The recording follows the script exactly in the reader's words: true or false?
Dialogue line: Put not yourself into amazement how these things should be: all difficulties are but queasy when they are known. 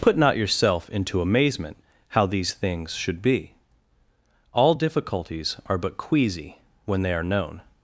true